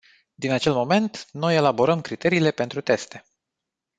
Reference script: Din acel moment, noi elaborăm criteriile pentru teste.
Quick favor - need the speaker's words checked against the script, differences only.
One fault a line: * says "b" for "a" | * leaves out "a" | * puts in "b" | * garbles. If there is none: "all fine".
all fine